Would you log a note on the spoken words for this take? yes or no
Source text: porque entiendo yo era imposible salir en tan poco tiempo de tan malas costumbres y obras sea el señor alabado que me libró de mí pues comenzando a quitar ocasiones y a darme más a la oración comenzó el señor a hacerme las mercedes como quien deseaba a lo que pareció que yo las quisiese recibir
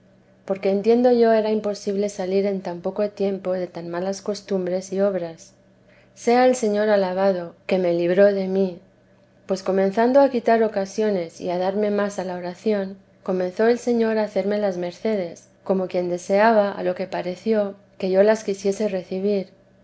no